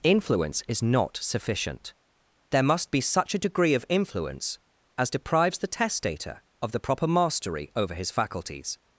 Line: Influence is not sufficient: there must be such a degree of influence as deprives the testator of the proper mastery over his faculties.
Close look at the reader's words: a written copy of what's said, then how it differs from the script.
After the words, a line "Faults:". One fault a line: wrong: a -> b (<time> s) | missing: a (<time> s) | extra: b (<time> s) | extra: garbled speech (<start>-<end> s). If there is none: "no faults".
Influence is not sufficient: there must be such a degree of influence as deprives the testator of the proper mastery over his faculties.
Faults:
no faults